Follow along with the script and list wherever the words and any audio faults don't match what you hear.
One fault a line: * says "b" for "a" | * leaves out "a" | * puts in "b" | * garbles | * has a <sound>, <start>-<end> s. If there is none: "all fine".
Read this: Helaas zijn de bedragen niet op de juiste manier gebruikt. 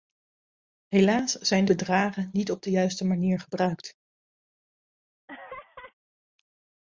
* has a laugh, 5.3-5.9 s